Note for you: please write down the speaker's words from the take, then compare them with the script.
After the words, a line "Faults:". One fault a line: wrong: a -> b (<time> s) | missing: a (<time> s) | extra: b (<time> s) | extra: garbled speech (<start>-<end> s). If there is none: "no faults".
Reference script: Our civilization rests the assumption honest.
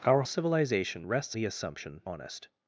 Our civilization rests the assumption honest.
Faults:
no faults